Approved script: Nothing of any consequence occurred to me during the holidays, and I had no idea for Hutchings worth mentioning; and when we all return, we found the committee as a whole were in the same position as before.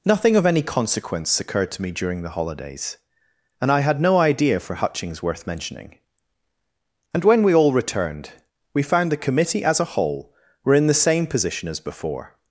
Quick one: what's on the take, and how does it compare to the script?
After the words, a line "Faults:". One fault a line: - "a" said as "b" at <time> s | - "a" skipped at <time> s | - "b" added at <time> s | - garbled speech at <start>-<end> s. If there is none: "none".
Nothing of any consequence occurred to me during the holidays, and I had no idea for Hutchings worth mentioning; and when we all returned, we found the committee as a whole were in the same position as before.
Faults:
- "return" said as "returned" at 7.7 s